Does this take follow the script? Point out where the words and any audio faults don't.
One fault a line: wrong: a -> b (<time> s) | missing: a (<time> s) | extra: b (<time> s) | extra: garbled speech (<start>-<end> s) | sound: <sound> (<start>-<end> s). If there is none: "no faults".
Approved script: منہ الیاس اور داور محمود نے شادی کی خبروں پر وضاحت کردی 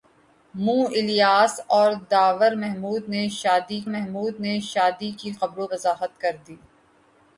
extra: محمود نے شادی (3.9 s)
missing: پر (5.7 s)